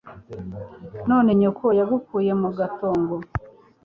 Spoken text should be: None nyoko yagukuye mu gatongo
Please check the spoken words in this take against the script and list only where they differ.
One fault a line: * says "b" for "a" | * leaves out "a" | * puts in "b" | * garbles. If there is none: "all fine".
all fine